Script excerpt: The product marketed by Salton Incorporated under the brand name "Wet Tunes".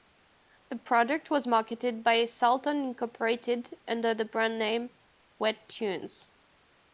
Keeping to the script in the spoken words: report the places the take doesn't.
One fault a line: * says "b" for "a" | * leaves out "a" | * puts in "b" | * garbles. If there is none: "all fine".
* puts in "was"